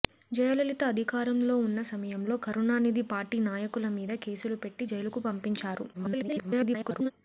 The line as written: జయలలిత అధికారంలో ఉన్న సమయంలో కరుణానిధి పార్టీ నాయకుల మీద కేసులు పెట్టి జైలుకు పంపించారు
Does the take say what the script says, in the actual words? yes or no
no